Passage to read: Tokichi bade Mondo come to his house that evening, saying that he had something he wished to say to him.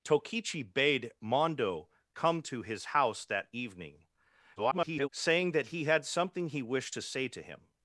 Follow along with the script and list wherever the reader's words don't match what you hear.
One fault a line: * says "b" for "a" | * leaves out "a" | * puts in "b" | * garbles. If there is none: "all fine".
* garbles